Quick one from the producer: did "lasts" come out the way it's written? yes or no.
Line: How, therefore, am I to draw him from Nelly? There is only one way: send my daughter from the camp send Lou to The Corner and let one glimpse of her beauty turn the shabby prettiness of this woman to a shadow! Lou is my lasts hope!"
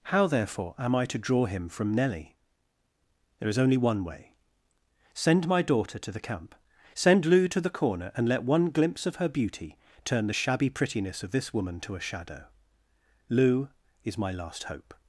no